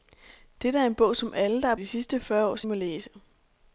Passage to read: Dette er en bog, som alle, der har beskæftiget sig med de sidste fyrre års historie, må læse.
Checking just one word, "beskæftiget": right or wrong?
wrong